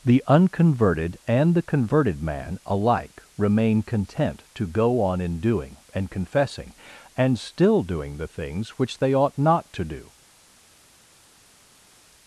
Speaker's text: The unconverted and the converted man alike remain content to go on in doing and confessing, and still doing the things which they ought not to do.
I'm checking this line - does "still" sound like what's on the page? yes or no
yes